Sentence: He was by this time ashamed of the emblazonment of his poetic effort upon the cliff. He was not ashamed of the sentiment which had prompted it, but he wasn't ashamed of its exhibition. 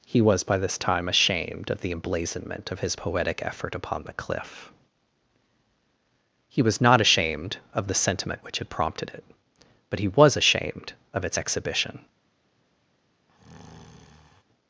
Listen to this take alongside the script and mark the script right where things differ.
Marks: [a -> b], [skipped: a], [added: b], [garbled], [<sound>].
He was by this time ashamed of the emblazonment of his poetic effort upon the cliff. He was not ashamed of the sentiment which had prompted it, but he [wasn't -> was] ashamed of its exhibition. [breath]